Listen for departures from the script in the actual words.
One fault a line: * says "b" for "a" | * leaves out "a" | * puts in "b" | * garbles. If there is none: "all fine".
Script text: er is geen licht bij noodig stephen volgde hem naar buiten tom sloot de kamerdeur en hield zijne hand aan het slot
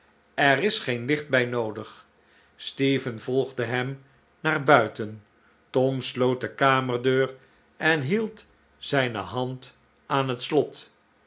all fine